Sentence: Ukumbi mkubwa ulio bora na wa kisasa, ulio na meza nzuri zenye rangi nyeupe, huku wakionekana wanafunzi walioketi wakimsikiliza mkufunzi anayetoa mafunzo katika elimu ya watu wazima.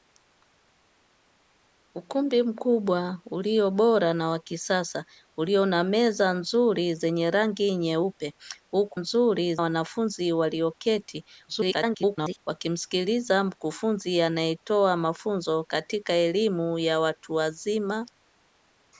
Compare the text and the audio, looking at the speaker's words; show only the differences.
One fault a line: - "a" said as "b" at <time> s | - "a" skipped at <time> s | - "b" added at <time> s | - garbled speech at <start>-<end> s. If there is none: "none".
- "wakionekana" said as "nzuri" at 8.9 s
- garbled speech at 11.5-12.4 s